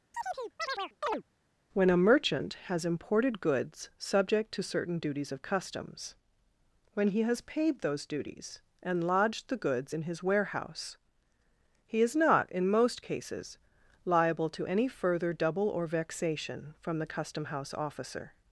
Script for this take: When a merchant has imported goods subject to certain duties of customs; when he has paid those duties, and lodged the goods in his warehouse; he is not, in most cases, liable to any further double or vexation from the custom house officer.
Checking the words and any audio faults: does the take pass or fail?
fail